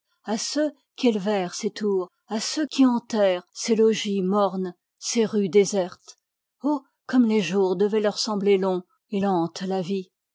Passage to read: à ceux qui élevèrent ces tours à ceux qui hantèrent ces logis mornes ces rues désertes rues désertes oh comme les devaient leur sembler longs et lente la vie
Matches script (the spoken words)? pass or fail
fail